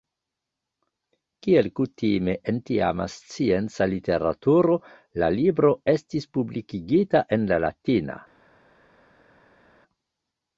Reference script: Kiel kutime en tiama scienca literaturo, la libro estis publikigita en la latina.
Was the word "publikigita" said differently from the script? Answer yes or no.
no